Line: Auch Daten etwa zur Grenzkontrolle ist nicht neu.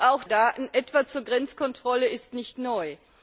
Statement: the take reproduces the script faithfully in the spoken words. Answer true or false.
true